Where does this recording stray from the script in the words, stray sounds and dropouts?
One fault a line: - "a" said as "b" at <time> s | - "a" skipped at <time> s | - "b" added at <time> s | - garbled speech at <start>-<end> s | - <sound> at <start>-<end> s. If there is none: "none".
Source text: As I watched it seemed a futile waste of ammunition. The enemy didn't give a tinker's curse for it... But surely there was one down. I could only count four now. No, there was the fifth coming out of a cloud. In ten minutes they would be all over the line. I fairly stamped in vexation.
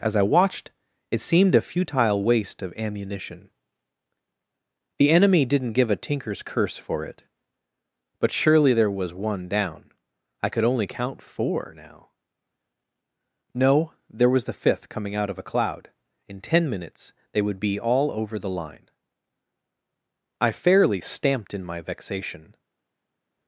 - "my" added at 21.6 s